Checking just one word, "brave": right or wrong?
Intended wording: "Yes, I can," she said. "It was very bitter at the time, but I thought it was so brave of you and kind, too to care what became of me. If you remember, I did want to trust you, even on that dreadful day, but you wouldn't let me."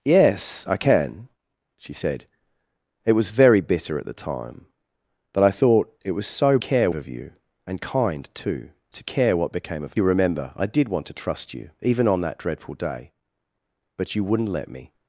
wrong